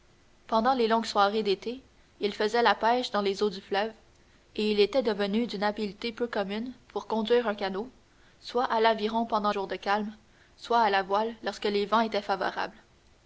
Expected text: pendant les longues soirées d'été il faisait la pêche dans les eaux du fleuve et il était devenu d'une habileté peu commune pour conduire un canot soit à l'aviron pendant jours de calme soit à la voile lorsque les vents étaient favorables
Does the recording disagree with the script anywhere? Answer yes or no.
no